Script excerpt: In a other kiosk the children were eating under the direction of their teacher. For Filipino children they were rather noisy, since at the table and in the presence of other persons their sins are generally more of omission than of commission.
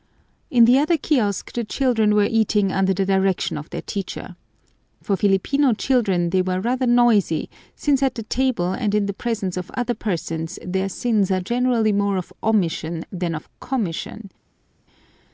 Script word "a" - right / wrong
wrong